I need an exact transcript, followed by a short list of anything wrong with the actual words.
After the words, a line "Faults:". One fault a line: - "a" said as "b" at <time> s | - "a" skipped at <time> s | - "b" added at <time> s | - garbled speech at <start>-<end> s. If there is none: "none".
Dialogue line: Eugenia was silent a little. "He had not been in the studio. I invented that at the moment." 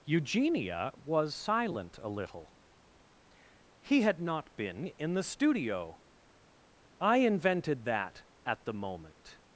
Eugenia was silent a little. "He had not been in the studio. I invented that at the moment."
Faults:
none